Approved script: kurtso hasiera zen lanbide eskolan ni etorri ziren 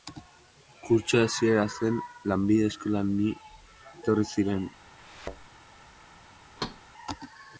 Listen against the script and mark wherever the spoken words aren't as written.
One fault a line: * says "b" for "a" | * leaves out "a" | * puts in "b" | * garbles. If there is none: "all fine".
all fine